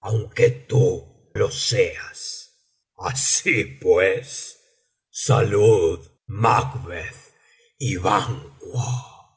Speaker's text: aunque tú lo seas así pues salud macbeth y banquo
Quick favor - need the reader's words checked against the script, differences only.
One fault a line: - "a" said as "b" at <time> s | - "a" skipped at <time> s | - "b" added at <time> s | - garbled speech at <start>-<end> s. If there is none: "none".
none